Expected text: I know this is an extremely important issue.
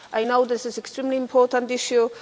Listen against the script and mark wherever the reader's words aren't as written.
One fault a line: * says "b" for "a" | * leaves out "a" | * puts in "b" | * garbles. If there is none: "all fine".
all fine